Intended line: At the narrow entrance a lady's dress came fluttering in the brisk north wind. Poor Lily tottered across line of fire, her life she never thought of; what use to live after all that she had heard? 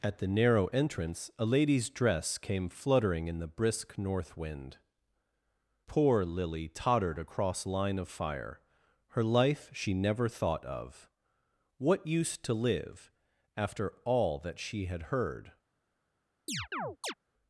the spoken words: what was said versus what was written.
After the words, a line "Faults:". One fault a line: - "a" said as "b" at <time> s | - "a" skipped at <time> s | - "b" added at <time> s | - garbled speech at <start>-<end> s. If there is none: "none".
At the narrow entrance a lady's dress came fluttering in the brisk north wind. Poor Lily tottered across line of fire, her life she never thought of; what use to live after all that she had heard?
Faults:
none